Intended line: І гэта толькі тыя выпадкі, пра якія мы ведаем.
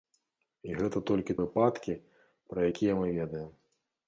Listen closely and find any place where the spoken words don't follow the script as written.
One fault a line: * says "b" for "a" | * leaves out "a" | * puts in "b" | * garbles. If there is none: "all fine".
* leaves out "тыя"